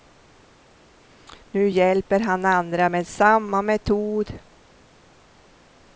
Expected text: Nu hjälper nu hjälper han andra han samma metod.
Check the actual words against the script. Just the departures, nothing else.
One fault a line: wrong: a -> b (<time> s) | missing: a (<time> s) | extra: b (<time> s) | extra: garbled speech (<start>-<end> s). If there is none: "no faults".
missing: nu hjälper (2.2 s)
wrong: han -> med (2.9 s)